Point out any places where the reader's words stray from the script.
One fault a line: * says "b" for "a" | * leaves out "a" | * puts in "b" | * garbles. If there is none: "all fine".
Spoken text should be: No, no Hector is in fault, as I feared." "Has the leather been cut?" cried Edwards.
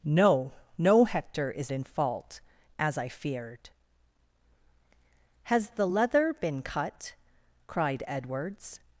all fine